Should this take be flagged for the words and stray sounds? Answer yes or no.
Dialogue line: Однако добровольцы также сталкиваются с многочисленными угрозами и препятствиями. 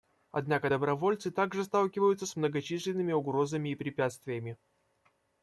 no